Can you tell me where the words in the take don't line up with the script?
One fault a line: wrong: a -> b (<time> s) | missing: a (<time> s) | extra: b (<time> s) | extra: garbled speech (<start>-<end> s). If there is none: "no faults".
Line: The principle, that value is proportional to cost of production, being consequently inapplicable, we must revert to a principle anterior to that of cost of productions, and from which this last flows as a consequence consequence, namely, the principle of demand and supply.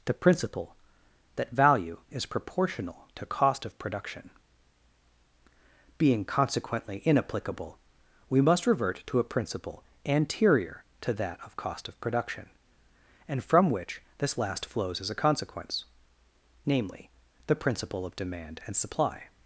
wrong: productions -> production (12.0 s)
missing: consequence (15.8 s)